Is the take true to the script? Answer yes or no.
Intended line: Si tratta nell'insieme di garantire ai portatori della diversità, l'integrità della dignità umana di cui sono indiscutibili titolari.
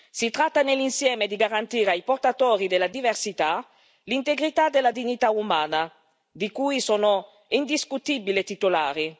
yes